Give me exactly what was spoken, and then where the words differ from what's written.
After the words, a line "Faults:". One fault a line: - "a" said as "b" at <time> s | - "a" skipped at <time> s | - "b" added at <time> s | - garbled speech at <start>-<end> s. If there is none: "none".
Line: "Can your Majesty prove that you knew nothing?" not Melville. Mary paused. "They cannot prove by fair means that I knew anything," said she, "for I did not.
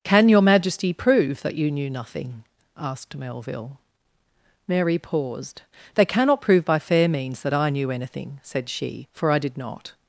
"Can your Majesty prove that you knew nothing?" asked Melville. Mary paused. "They cannot prove by fair means that I knew anything," said she, "for I did not.
Faults:
- "not" said as "asked" at 2.8 s